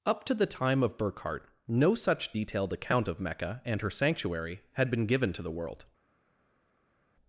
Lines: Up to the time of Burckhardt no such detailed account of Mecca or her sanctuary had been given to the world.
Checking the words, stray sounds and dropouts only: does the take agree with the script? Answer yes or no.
no